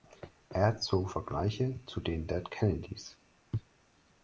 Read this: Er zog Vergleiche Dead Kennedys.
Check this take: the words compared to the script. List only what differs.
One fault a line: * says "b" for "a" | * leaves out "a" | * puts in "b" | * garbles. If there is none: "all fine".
* puts in "zu den"